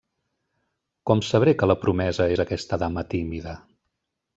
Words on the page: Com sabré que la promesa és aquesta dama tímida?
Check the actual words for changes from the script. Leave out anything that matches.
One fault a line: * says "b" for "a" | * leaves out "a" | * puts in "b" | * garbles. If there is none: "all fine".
all fine